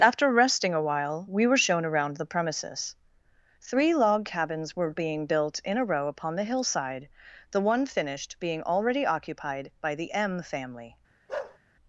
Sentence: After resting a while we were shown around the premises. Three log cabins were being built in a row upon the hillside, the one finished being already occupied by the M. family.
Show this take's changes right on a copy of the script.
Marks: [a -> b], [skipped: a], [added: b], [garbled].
After resting a while we were shown around the premises. Three log cabins were being built in a row upon the hillside, the one finished being already occupied by the M. family.